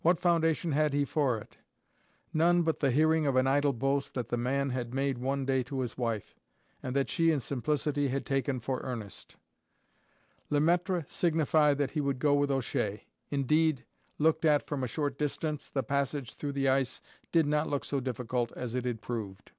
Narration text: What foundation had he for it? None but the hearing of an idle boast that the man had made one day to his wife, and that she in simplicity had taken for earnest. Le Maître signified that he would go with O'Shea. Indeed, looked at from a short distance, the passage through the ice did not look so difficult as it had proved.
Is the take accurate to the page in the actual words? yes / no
yes